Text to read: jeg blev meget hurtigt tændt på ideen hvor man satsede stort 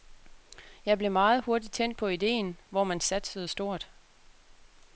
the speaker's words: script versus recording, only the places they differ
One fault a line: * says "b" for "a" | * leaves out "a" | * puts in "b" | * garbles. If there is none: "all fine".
all fine